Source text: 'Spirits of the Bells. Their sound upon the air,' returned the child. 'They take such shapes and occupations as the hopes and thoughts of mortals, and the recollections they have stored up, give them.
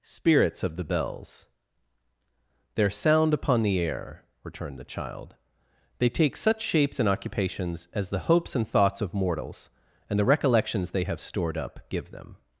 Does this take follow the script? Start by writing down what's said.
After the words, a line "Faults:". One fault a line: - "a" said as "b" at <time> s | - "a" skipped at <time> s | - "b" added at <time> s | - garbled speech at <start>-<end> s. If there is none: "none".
'Spirits of the Bells. Their sound upon the air,' returned the child. 'They take such shapes and occupations as the hopes and thoughts of mortals, and the recollections they have stored up, give them.
Faults:
none